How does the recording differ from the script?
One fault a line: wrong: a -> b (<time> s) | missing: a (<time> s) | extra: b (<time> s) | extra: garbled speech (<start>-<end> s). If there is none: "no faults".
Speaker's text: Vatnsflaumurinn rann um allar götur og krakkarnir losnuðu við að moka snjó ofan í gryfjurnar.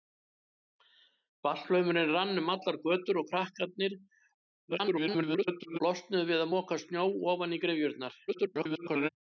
extra: garbled speech (4.7-5.8 s)
extra: garbled speech (8.3-9.1 s)